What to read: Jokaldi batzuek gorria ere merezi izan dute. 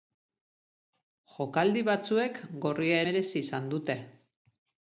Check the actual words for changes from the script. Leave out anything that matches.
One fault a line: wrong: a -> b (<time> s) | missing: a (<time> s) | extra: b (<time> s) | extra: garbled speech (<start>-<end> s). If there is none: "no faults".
missing: ere (3.0 s)